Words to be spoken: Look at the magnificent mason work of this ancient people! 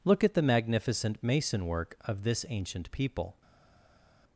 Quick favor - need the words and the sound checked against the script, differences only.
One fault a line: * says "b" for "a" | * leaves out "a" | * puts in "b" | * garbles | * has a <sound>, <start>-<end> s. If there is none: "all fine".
all fine